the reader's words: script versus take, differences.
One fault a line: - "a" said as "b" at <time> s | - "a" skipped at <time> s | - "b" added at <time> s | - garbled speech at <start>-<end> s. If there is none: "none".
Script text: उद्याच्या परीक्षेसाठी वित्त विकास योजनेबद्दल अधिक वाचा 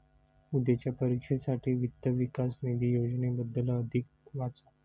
- "निधी" added at 2.6 s